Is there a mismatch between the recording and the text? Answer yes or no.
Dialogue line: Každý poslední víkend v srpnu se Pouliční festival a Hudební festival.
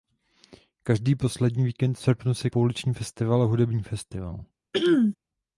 no